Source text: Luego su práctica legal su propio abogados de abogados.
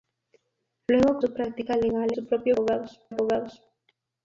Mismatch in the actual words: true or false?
false